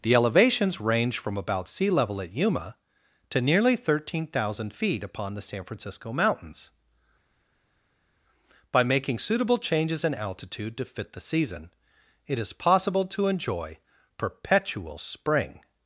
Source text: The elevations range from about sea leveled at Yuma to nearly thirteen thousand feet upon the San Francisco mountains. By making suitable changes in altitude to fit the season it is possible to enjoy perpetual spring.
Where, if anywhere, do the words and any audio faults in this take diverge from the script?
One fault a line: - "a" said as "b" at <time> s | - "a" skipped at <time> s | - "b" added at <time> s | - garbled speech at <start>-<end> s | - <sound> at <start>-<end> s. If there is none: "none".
- "leveled" said as "level" at 1.9 s